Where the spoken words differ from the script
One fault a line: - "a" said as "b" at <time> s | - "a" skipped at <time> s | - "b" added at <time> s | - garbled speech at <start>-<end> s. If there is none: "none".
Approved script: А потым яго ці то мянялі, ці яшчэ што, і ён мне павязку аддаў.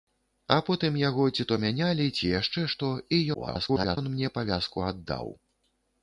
- garbled speech at 3.3-4.0 s